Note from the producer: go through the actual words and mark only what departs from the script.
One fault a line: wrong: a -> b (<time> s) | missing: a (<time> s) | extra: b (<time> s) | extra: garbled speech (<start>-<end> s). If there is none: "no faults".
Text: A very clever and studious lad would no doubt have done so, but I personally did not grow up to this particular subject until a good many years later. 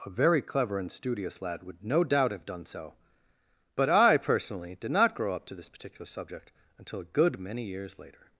no faults